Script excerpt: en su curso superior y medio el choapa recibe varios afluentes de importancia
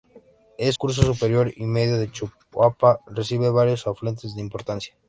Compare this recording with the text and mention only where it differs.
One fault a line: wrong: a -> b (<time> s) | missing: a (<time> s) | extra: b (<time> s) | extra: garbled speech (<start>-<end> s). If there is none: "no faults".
missing: su (0.7 s)